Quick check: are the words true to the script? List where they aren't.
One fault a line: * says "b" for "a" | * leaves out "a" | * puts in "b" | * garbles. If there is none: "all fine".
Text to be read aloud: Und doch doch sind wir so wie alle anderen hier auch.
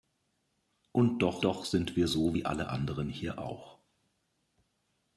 all fine